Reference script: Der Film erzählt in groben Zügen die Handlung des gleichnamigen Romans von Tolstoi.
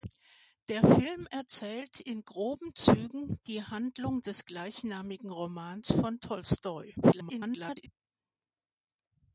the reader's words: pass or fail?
fail